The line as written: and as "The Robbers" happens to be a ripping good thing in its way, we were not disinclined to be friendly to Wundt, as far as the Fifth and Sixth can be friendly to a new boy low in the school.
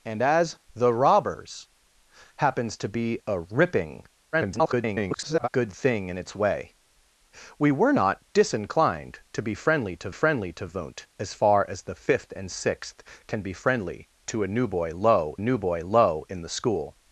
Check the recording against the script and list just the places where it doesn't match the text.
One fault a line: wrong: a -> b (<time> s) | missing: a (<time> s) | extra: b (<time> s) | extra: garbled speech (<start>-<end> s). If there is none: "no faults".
extra: garbled speech (4.3-5.5 s)
extra: friendly to (10.1 s)
extra: new boy low (15.4 s)